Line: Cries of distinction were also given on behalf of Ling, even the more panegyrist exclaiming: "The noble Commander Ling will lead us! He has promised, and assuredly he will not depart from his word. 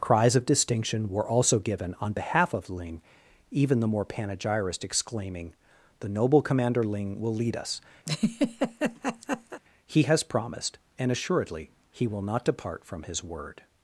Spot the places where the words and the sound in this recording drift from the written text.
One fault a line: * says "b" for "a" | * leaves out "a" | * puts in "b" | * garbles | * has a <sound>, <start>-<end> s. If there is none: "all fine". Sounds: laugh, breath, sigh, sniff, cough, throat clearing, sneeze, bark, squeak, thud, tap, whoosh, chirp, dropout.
* has a laugh, 8.1-9.6 s